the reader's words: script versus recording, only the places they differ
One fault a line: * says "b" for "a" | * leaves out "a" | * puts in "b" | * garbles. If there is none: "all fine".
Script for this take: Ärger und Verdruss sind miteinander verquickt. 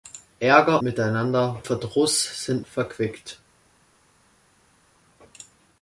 * says "miteinander" for "und"
* leaves out "miteinander"